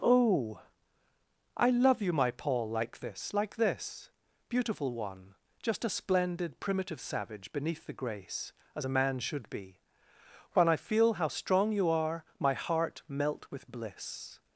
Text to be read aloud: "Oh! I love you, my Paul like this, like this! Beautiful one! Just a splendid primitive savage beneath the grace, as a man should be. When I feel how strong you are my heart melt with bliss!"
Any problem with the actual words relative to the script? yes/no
no